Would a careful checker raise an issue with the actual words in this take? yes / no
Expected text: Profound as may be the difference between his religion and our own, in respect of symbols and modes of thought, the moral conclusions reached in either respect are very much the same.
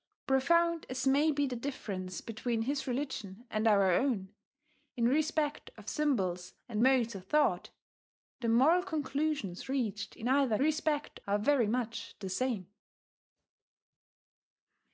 no